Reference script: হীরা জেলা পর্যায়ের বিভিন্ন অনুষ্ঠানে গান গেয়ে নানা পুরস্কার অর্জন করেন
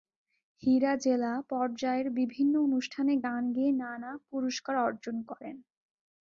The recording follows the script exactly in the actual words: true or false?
true